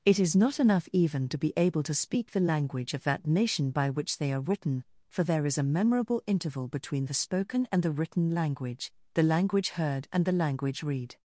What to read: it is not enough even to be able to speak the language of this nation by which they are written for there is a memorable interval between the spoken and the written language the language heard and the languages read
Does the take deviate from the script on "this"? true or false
true